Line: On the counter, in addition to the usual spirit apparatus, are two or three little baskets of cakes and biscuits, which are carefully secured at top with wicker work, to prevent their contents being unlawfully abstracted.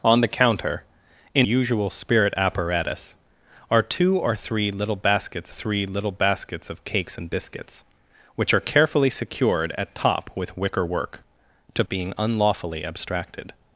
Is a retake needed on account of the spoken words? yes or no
yes